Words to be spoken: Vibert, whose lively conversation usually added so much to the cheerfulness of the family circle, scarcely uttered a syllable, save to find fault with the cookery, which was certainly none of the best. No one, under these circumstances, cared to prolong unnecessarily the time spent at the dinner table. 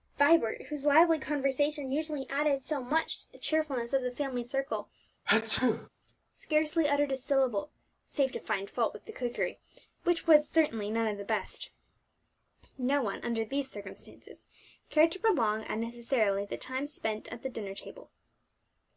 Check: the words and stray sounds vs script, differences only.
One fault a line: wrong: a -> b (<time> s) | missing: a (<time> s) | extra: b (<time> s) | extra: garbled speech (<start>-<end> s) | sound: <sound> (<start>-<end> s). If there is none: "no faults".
sound: sneeze (5.2-5.9 s)